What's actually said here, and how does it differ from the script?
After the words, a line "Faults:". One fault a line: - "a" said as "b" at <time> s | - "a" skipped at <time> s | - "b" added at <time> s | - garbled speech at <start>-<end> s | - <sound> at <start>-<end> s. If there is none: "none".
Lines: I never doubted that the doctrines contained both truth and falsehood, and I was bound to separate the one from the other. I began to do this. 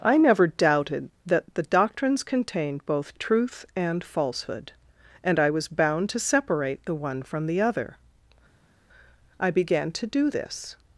I never doubted that the doctrines contained both truth and falsehood, and I was bound to separate the one from the other. I began to do this.
Faults:
none